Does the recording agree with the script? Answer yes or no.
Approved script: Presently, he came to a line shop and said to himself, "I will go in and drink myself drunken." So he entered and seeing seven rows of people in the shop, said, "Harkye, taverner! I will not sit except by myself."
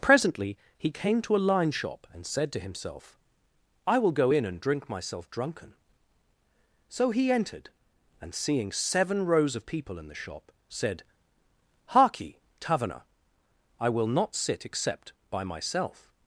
yes